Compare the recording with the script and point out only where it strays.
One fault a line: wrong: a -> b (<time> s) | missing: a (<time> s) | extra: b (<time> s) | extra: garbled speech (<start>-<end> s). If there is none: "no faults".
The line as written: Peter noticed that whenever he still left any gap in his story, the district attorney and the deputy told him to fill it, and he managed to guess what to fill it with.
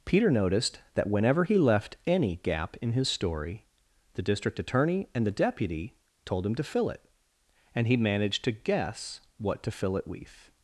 missing: still (1.6 s)